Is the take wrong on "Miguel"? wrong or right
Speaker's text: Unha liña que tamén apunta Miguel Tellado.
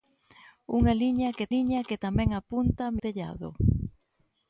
wrong